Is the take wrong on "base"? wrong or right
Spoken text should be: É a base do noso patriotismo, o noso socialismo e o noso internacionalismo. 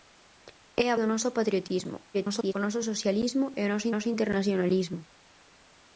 wrong